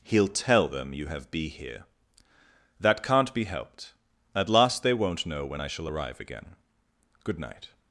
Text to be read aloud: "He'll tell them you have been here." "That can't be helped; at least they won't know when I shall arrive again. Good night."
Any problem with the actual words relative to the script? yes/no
yes